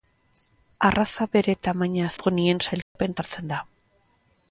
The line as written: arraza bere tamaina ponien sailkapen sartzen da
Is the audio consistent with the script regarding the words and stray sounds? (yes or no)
no